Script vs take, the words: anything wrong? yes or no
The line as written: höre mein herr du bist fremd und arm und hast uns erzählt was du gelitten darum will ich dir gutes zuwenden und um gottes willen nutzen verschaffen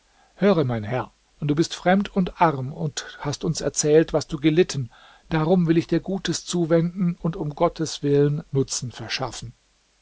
no